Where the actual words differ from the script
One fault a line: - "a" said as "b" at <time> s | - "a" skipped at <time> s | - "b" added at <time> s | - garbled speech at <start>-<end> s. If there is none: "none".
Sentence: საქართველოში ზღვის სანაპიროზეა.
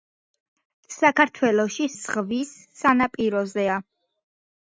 none